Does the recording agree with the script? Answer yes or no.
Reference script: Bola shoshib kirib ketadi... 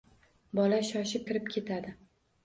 yes